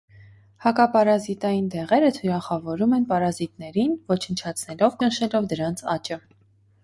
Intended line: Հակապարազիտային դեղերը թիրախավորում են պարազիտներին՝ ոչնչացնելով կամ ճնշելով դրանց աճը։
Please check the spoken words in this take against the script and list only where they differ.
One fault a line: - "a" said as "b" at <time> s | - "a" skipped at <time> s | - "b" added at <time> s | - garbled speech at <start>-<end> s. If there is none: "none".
- "կամ" skipped at 5.0 s